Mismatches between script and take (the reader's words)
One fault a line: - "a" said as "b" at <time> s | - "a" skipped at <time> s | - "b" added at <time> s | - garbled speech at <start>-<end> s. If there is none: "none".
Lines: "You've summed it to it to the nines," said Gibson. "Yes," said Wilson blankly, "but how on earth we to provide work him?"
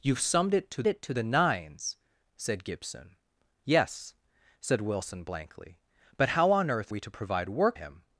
none